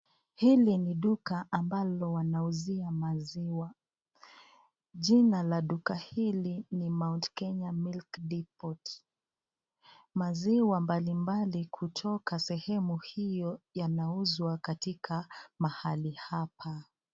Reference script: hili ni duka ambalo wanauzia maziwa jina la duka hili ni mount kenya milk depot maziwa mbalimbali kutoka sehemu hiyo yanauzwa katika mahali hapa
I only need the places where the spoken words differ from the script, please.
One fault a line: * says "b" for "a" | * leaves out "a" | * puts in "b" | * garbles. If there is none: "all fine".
all fine